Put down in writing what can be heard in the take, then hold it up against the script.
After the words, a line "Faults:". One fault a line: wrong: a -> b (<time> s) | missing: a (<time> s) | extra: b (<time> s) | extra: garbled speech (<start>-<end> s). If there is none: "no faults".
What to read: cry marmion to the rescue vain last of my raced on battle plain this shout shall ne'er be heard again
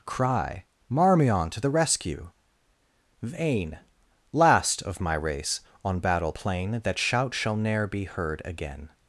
cry marmion to the rescue vain last of my race on battle plain that shout shall ne'er be heard again
Faults:
wrong: raced -> race (5.2 s)
wrong: this -> that (6.8 s)